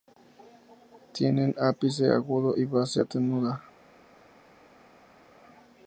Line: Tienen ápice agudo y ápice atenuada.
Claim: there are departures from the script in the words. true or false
true